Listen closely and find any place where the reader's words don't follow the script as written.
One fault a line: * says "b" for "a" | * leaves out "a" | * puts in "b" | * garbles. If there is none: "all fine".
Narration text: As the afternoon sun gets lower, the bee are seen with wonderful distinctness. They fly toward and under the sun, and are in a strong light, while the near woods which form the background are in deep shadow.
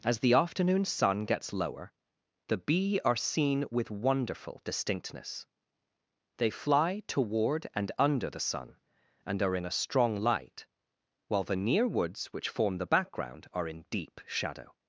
all fine